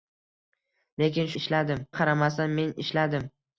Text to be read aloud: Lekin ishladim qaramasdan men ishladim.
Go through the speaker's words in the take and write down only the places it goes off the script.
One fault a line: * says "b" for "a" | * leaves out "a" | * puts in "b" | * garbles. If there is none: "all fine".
all fine